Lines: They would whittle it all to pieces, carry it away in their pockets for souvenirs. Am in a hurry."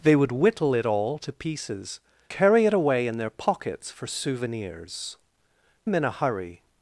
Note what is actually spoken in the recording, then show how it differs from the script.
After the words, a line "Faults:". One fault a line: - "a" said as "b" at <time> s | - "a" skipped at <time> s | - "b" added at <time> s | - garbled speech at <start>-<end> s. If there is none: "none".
They would whittle it all to pieces, carry it away in their pockets for souvenirs. Am in a hurry."
Faults:
none